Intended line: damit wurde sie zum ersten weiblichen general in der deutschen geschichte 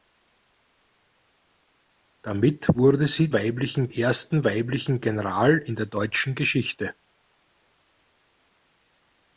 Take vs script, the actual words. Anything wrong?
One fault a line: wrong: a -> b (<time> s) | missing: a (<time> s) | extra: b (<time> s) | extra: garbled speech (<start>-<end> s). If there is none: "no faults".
wrong: zum -> weiblichen (3.3 s)